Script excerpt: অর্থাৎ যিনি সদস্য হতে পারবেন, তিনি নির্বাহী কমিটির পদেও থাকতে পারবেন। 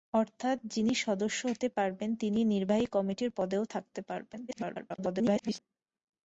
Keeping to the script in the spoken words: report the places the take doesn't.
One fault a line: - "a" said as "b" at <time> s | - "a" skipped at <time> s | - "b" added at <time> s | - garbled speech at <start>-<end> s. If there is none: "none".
- garbled speech at 4.5-5.6 s